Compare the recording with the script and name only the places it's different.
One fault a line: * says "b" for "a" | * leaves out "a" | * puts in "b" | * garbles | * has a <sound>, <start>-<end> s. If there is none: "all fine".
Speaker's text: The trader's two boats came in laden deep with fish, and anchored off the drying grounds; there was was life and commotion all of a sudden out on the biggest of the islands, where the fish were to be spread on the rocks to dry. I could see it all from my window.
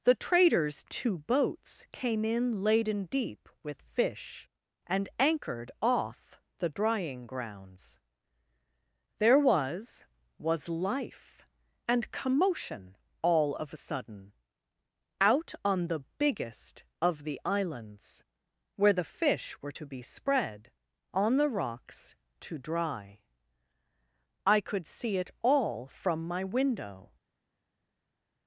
all fine